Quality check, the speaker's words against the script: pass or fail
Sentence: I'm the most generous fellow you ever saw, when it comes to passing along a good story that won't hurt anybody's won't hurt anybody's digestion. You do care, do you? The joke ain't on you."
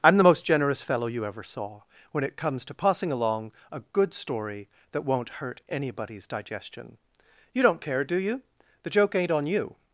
fail